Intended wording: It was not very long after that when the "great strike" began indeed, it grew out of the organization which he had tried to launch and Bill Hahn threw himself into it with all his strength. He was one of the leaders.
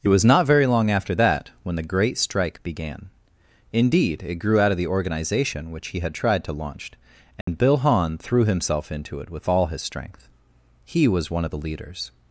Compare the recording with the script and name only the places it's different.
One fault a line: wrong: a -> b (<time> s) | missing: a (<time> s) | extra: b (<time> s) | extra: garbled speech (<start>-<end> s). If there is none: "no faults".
no faults